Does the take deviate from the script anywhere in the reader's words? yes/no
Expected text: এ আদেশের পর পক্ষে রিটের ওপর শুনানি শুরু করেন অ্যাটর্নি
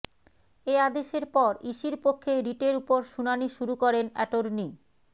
yes